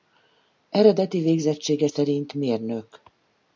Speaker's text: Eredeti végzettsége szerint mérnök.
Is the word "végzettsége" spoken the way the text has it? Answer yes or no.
yes